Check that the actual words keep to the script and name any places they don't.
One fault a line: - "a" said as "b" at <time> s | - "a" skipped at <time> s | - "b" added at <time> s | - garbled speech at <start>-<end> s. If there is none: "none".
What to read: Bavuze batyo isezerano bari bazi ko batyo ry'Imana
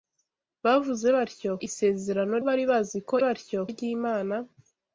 none